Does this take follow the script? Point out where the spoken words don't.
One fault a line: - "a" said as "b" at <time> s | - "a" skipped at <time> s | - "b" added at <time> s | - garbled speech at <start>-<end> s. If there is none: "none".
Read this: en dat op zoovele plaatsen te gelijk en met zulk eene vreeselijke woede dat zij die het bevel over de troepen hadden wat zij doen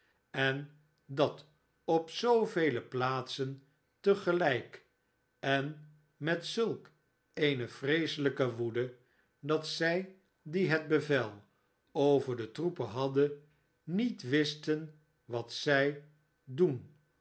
- "niet wisten" added at 13.8 s